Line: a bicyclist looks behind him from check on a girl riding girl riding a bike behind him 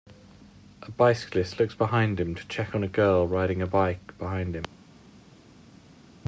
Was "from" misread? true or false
true